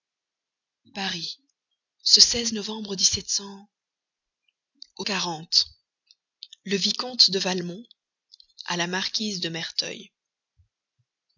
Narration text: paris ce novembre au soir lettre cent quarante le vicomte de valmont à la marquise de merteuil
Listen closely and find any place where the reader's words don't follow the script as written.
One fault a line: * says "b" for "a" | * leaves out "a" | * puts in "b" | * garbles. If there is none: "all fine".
* leaves out "soir lettre cent"